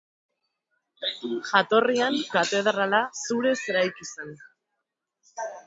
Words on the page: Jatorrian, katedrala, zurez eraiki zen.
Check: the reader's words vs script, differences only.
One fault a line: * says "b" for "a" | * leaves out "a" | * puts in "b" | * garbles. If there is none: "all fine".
all fine